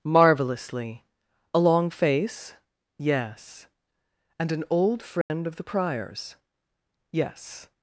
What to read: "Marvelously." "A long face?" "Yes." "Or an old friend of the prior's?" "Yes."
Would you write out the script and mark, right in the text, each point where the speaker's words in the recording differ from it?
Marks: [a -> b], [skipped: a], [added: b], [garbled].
"Marvelously." "A long face?" "Yes." ["Or -> And] an old friend of the prior's?" "Yes."